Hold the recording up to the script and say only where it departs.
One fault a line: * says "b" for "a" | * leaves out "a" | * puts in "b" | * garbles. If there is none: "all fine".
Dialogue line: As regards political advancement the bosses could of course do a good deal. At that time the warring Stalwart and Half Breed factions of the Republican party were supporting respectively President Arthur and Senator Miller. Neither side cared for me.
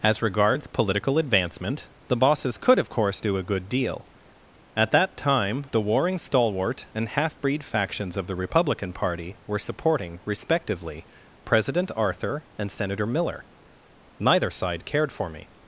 all fine